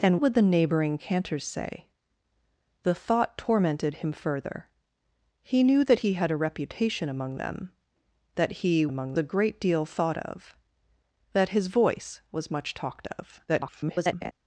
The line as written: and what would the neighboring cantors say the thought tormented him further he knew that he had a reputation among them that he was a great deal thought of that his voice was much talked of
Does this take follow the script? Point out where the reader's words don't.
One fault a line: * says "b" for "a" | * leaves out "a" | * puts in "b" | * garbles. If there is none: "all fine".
* leaves out "what"
* says "among" for "was"
* garbles